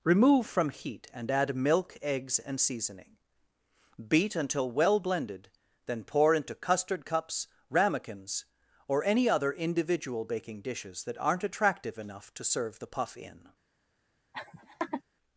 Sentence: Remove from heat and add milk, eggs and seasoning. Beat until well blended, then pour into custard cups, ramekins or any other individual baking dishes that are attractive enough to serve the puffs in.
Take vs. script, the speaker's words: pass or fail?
fail